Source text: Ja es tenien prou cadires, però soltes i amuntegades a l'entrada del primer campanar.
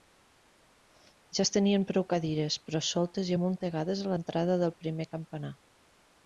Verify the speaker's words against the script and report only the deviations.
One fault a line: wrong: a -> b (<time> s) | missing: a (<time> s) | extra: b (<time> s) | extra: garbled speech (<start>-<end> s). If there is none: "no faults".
no faults